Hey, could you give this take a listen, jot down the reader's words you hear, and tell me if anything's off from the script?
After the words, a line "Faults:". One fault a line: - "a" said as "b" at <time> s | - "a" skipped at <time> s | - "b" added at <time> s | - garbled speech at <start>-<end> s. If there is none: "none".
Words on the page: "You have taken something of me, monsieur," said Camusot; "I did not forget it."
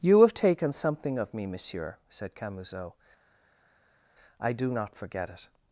"You have taken something of me, monsieur," said Camusot; "I do not forget it."
Faults:
- "did" said as "do" at 4.5 s